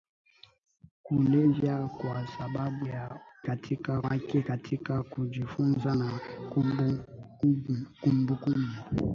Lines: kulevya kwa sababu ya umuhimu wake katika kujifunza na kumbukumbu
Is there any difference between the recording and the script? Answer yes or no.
yes